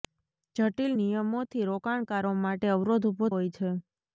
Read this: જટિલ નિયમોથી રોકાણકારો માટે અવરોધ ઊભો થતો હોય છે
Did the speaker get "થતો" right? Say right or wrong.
wrong